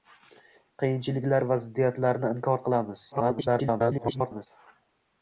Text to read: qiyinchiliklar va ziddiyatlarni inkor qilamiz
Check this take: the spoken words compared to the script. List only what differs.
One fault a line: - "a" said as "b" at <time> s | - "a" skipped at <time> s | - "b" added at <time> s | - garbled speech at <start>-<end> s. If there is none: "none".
- garbled speech at 3.1-4.5 s